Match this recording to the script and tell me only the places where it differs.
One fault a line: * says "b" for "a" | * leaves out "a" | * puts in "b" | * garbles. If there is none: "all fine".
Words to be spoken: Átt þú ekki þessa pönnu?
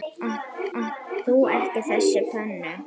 * puts in "átt"